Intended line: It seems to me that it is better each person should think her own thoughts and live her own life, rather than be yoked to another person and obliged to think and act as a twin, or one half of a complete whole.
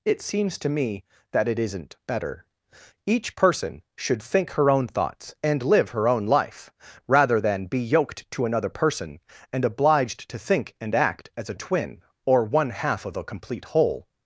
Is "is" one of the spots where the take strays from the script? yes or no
yes